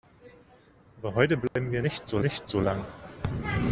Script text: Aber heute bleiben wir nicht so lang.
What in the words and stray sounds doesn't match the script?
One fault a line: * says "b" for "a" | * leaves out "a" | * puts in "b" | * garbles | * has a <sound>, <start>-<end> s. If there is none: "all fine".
* has a dropout, 1.5-1.6 s
* puts in "nicht so"